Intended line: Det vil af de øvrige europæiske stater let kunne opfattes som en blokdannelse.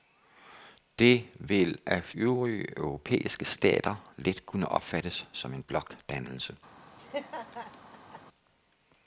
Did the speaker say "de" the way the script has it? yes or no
no